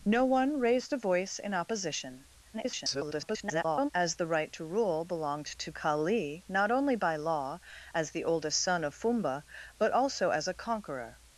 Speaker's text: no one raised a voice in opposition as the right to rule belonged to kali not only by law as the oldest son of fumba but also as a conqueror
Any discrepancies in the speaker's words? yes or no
yes